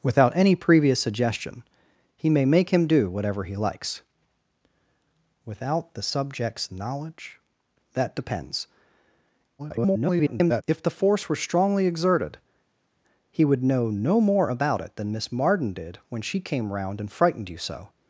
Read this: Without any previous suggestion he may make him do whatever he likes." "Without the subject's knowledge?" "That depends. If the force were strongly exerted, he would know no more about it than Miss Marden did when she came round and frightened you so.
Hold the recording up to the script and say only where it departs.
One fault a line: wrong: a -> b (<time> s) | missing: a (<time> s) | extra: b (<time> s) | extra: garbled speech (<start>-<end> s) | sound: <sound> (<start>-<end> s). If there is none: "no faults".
extra: garbled speech (9.6-10.6 s)